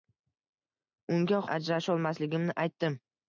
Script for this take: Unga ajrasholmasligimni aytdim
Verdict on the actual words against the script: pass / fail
pass